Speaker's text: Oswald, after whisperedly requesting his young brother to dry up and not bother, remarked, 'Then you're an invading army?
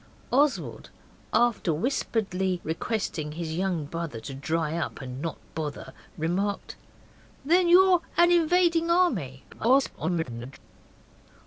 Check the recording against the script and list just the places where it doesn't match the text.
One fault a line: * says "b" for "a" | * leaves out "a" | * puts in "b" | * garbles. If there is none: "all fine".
* garbles